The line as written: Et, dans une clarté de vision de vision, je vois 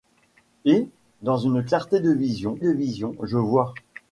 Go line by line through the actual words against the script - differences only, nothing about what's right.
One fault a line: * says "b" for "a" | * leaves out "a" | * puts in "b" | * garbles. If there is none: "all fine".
all fine